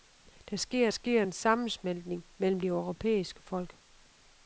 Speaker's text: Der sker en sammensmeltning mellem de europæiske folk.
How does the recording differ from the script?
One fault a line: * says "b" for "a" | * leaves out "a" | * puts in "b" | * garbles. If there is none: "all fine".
* puts in "sker"
* leaves out "de"